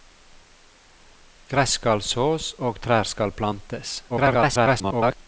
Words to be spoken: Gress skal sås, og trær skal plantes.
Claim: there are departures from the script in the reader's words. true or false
true